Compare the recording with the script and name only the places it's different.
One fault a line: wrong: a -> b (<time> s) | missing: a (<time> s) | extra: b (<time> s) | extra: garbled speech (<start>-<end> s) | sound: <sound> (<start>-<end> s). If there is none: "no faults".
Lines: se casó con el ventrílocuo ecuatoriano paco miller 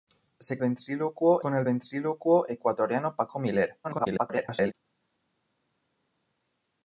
wrong: casó -> ventrílocuo (0.6 s)
extra: garbled speech (3.8-4.7 s)